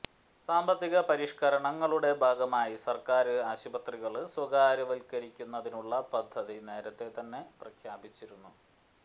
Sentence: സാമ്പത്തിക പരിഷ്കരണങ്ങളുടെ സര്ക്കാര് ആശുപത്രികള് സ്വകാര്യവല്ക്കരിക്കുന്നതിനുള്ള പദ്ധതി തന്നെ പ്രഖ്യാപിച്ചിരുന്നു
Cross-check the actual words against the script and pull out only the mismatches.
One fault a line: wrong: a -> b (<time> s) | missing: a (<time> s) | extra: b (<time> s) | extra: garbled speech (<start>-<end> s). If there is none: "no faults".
extra: ഭാഗമായി (2.2 s)
extra: നേരത്തെ (6.7 s)